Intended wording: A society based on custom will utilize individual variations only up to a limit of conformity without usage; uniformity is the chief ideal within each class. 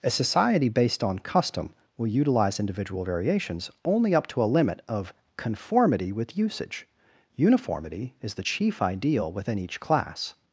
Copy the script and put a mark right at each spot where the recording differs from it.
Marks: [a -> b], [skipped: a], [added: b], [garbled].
A society based on custom will utilize individual variations only up to a limit of conformity [without -> with] usage; uniformity is the chief ideal within each class.